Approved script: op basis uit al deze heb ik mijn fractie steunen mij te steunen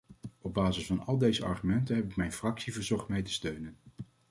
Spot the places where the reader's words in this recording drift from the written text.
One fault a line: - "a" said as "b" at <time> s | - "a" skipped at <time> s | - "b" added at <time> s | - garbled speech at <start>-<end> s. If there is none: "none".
- "uit" said as "van" at 0.8 s
- "argumenten" added at 1.4 s
- "steunen" said as "verzocht" at 2.7 s